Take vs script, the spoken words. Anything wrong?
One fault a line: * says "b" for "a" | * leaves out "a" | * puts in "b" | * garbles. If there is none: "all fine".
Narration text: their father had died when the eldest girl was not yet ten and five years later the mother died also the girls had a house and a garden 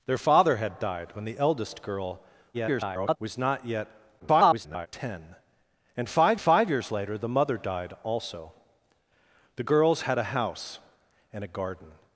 * garbles
* garbles
* puts in "five"